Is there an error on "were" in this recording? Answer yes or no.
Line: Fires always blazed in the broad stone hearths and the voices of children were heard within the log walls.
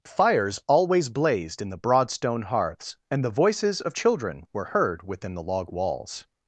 no